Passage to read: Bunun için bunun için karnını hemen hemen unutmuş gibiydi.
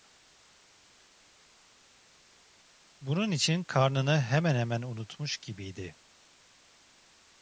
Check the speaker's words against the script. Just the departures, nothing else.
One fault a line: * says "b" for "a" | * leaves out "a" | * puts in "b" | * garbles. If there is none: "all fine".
* leaves out "bunun için"